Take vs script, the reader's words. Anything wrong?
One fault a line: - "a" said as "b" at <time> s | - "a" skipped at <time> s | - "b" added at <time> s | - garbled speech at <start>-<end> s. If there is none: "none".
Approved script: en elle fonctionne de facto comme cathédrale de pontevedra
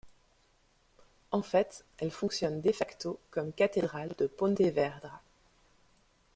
- "fait" added at 1.4 s